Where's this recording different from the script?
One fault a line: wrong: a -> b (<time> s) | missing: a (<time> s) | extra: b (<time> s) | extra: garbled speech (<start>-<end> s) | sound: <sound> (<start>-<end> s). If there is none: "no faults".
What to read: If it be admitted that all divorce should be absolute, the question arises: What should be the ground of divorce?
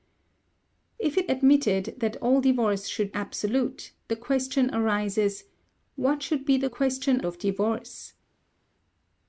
missing: be (1.3 s)
missing: be (3.1 s)
wrong: ground -> question (6.6 s)